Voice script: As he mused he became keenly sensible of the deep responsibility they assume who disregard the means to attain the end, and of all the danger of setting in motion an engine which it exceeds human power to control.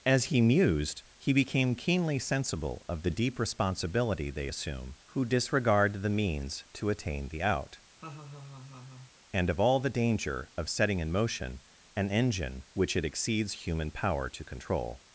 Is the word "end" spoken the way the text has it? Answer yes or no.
no